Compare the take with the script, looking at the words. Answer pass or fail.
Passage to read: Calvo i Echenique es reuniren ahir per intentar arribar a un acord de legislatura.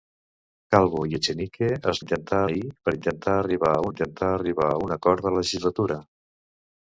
fail